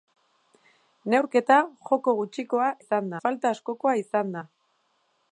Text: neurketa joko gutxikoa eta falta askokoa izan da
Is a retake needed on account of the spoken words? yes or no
yes